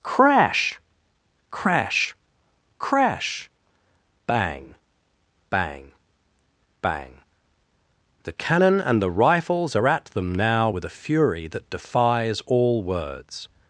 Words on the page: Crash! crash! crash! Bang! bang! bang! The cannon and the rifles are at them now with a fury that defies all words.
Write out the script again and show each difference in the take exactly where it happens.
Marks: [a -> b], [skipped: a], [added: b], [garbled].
Crash! crash! crash! Bang! bang! bang! The cannon and the rifles are at them now with a fury that defies all words.